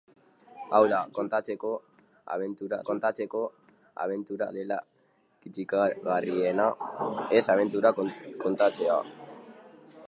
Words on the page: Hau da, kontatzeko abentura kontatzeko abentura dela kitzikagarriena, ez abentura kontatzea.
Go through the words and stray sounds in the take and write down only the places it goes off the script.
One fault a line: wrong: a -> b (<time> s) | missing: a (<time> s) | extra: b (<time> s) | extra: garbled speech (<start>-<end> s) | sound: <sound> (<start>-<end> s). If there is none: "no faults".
no faults